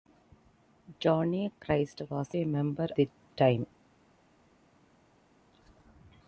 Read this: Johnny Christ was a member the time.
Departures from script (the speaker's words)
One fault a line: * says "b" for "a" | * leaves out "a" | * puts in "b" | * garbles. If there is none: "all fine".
all fine